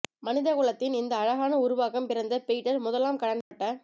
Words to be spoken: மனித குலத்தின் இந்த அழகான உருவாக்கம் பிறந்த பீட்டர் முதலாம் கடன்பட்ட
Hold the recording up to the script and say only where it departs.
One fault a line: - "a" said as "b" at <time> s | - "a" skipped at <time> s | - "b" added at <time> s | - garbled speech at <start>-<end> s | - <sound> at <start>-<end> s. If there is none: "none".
- dropout at 3.4-3.5 s